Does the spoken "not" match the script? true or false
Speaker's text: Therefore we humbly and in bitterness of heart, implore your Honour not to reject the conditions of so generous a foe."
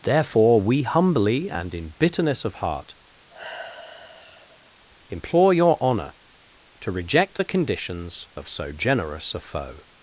false